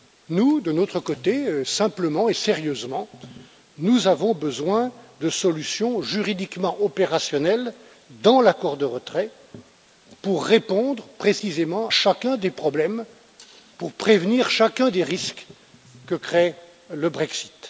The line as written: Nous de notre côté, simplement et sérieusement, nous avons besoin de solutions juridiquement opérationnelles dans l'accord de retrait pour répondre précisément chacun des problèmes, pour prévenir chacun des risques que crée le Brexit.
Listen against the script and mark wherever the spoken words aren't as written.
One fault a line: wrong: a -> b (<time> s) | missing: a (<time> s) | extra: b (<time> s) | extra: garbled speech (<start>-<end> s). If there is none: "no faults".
no faults